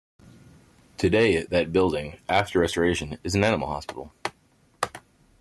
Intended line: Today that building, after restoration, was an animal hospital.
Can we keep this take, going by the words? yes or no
no